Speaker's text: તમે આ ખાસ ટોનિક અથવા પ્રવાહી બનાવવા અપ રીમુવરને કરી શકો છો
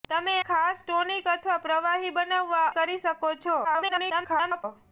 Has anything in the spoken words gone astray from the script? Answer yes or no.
yes